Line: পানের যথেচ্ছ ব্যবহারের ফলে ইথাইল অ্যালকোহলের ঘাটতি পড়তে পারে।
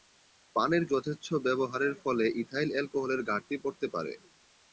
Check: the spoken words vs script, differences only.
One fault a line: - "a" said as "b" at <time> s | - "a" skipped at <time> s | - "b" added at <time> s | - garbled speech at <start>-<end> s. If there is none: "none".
none